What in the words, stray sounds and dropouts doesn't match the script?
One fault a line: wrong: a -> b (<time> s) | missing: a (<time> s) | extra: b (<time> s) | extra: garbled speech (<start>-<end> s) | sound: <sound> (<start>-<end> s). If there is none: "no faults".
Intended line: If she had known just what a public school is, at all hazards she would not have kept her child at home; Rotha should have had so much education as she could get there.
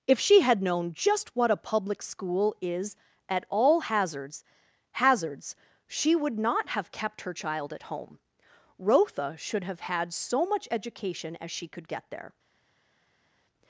extra: hazards (4.9 s)